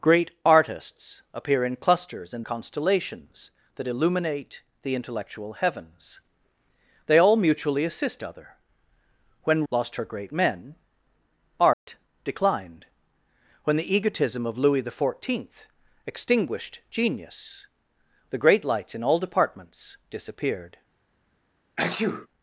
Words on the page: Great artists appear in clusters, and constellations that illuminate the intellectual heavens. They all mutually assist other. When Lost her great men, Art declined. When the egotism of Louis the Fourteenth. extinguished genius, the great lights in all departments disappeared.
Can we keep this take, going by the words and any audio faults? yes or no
no